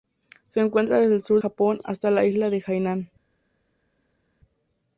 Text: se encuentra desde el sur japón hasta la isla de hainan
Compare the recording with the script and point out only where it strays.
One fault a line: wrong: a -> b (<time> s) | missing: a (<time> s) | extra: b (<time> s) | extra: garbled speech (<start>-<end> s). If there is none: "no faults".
no faults